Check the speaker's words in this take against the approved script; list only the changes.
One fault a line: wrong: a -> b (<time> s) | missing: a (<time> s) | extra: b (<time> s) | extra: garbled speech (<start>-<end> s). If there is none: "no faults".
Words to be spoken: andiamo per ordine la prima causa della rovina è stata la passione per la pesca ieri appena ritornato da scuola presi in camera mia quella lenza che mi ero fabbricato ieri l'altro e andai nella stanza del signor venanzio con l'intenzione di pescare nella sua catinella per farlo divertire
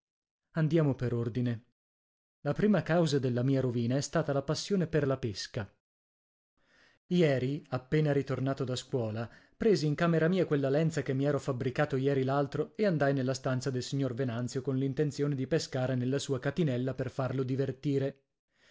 extra: mia (3.4 s)